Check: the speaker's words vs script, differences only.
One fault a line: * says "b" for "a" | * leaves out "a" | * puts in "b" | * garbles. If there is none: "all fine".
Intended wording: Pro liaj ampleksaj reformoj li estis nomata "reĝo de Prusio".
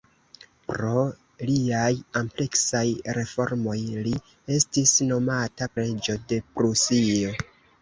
all fine